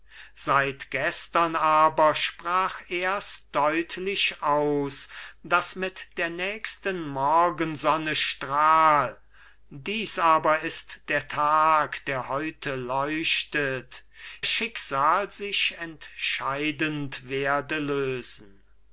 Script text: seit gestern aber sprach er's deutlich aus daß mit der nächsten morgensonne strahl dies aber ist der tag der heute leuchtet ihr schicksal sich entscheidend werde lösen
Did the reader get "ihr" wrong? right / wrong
wrong